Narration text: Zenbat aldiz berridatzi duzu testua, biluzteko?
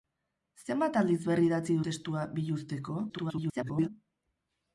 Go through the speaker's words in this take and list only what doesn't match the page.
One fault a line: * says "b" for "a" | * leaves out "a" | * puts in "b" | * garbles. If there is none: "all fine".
* leaves out "duzu"
* garbles